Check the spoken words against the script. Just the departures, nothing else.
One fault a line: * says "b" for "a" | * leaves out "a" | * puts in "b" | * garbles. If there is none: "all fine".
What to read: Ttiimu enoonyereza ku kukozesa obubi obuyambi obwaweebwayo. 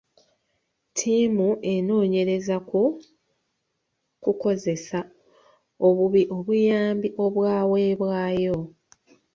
all fine